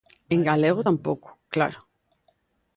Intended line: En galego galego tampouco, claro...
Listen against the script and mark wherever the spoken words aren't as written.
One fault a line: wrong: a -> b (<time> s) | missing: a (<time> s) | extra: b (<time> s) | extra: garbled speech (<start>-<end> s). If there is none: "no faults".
missing: galego (0.8 s)